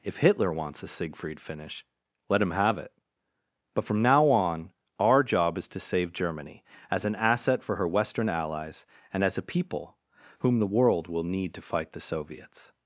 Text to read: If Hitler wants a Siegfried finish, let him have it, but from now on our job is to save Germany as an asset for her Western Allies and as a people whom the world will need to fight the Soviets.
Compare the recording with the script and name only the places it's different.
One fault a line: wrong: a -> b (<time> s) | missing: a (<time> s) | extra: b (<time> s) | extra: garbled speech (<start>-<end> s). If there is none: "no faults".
no faults